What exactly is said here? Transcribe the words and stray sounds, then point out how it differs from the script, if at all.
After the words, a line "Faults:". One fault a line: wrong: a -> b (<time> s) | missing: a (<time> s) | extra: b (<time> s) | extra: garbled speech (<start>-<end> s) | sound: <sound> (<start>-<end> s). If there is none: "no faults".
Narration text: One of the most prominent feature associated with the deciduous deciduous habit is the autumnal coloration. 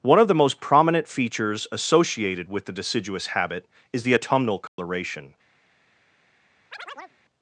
One of the most prominent features associated with the deciduous habit is the autumnal coloration.
Faults:
wrong: feature -> features (1.1 s)
missing: deciduous (3.3 s)
sound: dropout (4.7-4.8 s)
sound: chirp (6.7-7.2 s)